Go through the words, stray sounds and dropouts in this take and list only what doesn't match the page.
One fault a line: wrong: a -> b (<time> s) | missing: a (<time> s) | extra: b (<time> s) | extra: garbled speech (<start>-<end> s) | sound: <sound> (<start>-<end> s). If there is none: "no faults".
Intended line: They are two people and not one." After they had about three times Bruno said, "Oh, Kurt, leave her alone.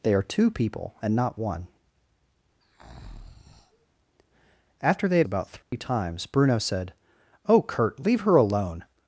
sound: breath (2.6-3.9 s)
sound: dropout (5.6-5.7 s)